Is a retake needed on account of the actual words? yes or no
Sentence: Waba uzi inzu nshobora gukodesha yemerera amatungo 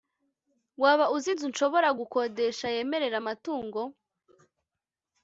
no